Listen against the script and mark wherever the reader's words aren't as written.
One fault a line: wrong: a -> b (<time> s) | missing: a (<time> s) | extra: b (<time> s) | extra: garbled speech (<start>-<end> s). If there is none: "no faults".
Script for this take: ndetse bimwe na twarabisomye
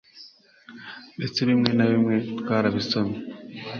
extra: bimwe (1.9 s)